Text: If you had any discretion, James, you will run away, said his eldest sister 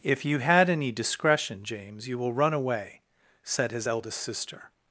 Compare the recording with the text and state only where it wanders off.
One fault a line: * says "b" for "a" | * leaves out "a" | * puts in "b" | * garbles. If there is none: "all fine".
all fine